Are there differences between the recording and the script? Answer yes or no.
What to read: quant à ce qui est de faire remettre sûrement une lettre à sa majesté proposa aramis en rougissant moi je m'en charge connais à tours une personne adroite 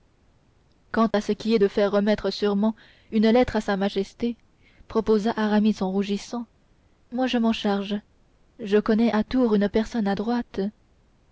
yes